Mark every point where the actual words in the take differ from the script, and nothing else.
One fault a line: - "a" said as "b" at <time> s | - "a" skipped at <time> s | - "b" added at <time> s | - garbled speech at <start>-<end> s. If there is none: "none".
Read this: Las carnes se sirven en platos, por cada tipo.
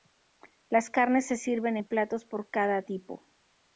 none